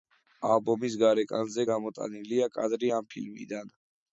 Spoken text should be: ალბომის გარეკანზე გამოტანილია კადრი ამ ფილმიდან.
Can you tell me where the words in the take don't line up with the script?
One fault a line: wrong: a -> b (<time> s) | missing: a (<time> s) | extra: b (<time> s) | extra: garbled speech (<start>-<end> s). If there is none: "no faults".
no faults